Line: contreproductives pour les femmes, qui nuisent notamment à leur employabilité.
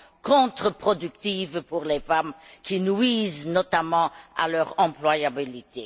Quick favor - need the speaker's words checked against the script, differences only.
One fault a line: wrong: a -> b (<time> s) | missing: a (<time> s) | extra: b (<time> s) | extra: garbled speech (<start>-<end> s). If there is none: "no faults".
no faults